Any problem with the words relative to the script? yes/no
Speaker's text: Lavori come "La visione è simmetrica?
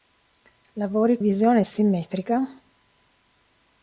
yes